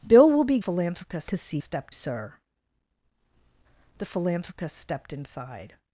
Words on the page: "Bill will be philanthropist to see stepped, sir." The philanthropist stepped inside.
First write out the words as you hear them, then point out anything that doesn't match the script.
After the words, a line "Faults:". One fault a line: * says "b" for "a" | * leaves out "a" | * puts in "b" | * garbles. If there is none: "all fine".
"Bill will be philanthropist to see stepped, sir." The philanthropist stepped inside.
Faults:
all fine